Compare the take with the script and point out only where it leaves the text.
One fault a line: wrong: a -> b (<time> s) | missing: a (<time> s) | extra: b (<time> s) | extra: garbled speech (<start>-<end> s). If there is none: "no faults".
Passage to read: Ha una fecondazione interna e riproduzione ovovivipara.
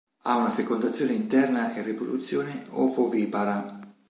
no faults